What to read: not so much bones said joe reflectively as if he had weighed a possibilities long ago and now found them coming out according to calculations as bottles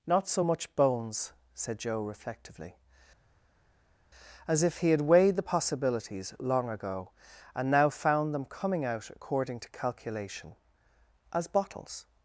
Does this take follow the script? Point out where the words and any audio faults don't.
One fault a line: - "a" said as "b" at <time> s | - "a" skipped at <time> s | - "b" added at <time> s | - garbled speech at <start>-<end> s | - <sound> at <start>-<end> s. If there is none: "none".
- "a" said as "the" at 5.4 s
- "calculations" said as "calculation" at 9.7 s